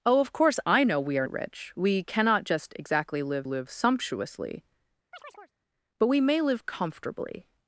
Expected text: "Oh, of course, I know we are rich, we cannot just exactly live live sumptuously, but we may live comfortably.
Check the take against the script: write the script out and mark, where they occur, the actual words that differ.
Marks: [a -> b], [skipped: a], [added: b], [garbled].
"Oh, of course, I know we are rich, we cannot just exactly live live sumptuously, but we may live comfortably.